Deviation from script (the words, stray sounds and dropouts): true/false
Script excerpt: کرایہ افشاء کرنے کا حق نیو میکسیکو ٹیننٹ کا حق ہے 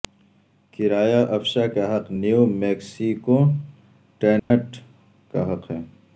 true